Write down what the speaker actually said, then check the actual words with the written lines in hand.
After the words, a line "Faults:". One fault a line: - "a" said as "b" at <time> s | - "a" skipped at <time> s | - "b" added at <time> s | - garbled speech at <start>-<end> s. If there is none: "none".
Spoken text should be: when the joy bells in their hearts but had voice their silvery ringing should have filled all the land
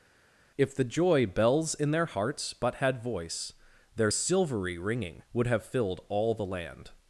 if the joy bells in their hearts but had voice their silvery ringing would have filled all the land
Faults:
- "when" said as "if" at 0.6 s
- "should" said as "would" at 5.3 s